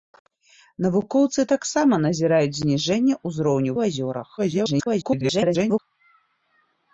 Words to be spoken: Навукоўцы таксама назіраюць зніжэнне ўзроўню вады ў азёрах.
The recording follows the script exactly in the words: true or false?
false